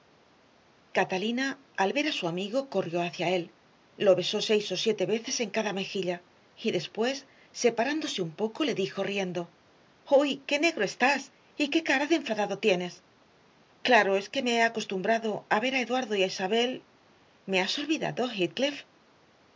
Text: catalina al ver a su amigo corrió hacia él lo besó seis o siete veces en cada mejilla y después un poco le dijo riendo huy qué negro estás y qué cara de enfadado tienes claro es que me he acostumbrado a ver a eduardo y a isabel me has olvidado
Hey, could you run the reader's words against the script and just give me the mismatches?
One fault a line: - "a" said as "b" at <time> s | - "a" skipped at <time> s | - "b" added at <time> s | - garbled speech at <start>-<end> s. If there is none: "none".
- "separándose" added at 7.5 s